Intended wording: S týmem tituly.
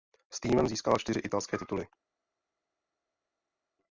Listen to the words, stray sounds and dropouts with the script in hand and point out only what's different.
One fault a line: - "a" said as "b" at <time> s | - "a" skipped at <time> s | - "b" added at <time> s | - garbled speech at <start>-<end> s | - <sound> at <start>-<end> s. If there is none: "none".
- "získala čtyři italské" added at 0.7 s